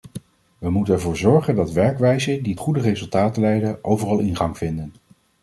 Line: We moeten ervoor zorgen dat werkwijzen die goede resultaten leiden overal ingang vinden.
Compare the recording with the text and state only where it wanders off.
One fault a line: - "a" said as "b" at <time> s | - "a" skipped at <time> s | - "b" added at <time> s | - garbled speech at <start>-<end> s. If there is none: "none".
none